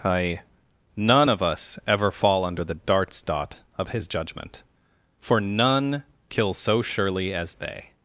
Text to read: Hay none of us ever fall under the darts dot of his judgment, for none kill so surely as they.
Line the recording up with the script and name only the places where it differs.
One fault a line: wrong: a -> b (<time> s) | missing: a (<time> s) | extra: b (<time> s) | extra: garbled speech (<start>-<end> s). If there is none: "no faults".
wrong: Hay -> I (0.0 s)